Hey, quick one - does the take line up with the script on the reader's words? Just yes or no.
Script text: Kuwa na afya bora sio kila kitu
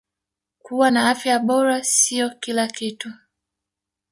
yes